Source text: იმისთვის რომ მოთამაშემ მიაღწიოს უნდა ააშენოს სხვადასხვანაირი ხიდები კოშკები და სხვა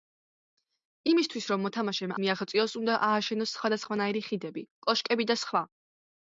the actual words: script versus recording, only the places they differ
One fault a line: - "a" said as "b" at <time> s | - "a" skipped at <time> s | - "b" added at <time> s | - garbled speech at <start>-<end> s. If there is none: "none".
none